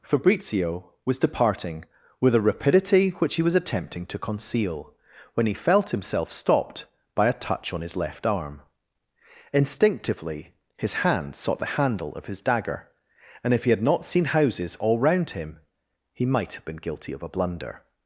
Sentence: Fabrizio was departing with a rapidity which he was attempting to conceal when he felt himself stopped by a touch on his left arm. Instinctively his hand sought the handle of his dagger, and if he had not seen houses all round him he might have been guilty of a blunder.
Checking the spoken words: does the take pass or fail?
pass